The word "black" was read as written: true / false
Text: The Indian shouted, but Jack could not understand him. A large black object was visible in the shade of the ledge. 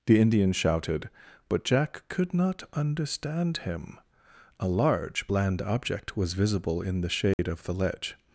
false